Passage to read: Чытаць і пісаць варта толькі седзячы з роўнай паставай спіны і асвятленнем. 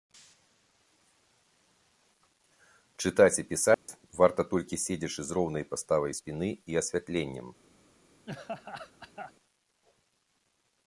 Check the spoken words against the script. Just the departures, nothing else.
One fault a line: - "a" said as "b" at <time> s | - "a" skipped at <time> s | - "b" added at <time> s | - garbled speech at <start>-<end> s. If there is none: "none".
none